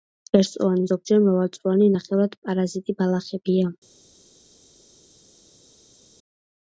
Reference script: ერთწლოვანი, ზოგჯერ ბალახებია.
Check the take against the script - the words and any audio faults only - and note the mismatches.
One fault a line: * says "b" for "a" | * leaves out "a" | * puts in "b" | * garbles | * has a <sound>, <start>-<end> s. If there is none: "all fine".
* puts in "მრავალწლოვანი ნახევრად პარაზიტი"